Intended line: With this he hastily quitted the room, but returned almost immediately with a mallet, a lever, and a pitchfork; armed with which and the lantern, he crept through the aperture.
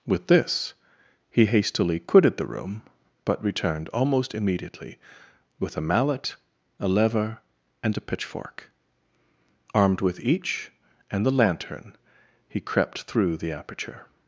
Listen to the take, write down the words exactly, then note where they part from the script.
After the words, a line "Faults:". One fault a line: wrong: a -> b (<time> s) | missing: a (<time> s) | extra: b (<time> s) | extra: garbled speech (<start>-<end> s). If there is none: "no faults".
With this he hastily quitted the room, but returned almost immediately with a mallet, a lever, and a pitchfork; armed with each and the lantern, he crept through the aperture.
Faults:
wrong: which -> each (10.2 s)